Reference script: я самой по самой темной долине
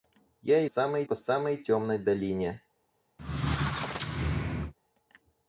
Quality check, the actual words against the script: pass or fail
pass